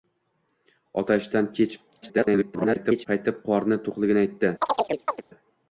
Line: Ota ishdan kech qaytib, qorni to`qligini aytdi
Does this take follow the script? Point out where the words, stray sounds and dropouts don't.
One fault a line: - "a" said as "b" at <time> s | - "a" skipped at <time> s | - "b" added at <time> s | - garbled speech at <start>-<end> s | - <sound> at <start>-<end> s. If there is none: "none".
- garbled speech at 2.0-3.1 s
- chirp at 4.6-5.2 s